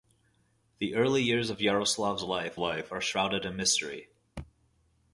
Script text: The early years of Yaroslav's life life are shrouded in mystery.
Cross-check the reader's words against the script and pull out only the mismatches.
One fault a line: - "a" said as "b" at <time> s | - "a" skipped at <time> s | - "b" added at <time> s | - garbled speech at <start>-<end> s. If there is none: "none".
none